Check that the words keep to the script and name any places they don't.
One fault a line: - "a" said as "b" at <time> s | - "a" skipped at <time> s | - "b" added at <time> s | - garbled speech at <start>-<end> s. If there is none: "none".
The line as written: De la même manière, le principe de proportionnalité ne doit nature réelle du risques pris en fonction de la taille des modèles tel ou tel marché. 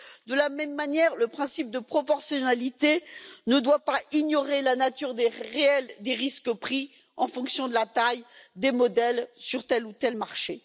- "pas ignorer la" added at 3.8 s
- "du" said as "des" at 6.0 s
- "sur" added at 9.3 s